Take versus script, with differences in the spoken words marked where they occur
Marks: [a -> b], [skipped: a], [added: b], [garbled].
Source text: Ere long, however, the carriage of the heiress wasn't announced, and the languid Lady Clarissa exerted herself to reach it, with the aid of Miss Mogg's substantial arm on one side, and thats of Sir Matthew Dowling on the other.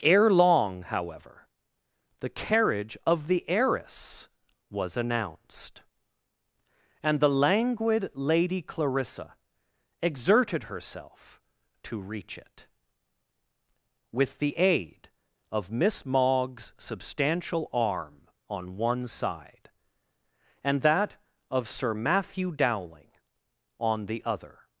Ere long, however, the carriage of the heiress [wasn't -> was] announced, and the languid Lady Clarissa exerted herself to reach it, with the aid of Miss Mogg's substantial arm on one side, and [thats -> that] of Sir Matthew Dowling on the other.